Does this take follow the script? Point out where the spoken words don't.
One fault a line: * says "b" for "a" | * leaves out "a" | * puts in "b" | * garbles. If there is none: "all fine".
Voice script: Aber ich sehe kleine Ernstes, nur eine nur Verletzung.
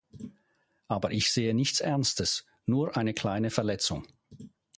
* says "nichts" for "kleine"
* says "kleine" for "nur"